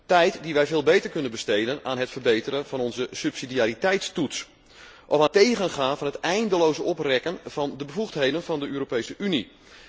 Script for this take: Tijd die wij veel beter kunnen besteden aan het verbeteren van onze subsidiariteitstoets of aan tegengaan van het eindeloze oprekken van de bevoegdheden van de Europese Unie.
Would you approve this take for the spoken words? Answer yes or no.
yes